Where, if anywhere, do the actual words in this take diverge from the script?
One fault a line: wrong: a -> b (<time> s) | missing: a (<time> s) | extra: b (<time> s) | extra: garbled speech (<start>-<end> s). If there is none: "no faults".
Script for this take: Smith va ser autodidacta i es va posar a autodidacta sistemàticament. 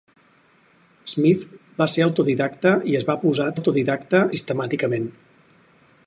no faults